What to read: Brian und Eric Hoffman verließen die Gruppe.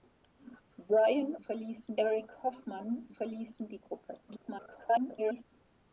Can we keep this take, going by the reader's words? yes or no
no